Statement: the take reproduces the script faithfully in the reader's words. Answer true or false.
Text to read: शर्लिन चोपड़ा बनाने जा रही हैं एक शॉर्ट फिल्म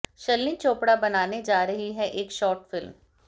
true